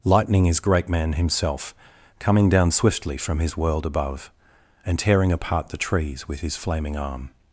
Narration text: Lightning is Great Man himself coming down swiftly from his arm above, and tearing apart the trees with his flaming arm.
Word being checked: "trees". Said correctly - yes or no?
yes